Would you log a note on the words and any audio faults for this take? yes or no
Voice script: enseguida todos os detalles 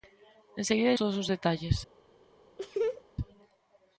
yes